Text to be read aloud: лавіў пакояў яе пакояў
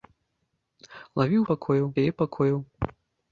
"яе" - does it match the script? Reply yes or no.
yes